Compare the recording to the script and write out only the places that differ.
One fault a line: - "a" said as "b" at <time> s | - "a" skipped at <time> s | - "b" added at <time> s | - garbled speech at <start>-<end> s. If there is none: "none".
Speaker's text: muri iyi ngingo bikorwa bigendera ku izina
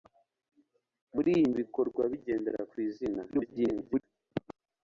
- "ngingo" skipped at 1.4 s
- garbled speech at 3.3-4.0 s